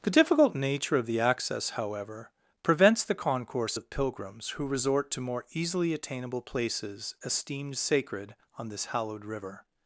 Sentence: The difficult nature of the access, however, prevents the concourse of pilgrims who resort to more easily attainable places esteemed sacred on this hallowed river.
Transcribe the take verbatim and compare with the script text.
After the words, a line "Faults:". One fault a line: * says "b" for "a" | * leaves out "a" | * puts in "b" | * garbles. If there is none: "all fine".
The difficult nature of the access, however, prevents the concourse of pilgrims who resort to more easily attainable places esteemed sacred on this hallowed river.
Faults:
all fine